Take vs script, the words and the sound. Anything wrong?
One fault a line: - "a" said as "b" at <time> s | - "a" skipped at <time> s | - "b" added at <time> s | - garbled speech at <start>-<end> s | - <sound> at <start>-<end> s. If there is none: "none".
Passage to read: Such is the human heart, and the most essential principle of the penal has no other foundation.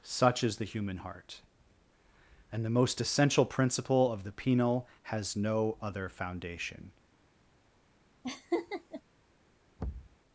- laugh at 8.2-9.0 s
- thud at 9.8-10.2 s